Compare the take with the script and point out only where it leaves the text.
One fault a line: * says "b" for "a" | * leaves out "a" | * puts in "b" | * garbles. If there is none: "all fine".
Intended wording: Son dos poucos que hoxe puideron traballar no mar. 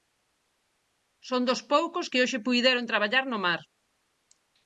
all fine